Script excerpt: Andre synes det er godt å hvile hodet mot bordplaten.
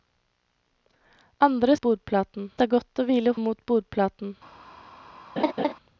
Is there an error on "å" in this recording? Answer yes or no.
no